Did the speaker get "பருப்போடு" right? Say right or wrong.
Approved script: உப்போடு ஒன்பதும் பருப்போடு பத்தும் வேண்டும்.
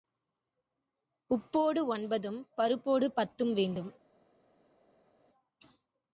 right